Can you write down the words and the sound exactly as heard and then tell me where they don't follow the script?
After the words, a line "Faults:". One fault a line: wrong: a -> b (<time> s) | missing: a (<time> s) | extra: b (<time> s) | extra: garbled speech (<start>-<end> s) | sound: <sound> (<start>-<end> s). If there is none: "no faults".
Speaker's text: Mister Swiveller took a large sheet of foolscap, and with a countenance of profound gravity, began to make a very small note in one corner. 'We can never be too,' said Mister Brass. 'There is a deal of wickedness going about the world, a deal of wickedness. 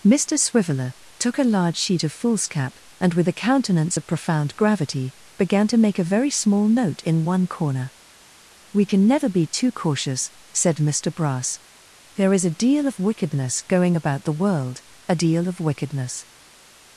Mister Swiveller took a large sheet of foolscap, and with a countenance of profound gravity, began to make a very small note in one corner. 'We can never be too cautious,' said Mister Brass. 'There is a deal of wickedness going about the world, a deal of wickedness.
Faults:
extra: cautious (9.7 s)